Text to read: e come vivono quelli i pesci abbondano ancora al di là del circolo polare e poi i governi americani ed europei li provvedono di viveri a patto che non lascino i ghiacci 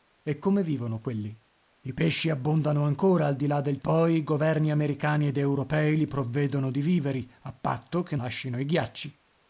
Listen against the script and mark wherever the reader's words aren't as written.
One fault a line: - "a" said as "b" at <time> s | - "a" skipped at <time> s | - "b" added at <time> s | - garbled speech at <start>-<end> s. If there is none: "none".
- "circolo polare e" skipped at 3.8 s
- "non" skipped at 8.2 s